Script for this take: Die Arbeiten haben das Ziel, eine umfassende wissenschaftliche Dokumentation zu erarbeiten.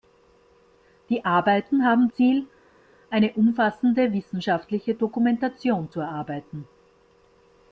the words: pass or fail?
fail